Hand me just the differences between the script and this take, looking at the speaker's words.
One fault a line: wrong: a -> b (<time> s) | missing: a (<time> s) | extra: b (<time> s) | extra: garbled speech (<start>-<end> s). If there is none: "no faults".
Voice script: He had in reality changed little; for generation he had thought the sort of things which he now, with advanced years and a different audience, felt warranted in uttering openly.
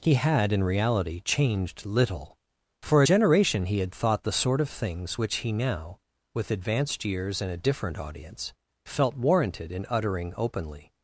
no faults